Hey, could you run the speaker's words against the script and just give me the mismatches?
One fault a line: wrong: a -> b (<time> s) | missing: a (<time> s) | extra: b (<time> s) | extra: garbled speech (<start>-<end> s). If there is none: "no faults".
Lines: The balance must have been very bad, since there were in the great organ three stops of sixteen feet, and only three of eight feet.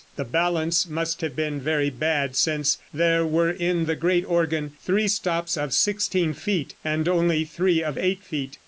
no faults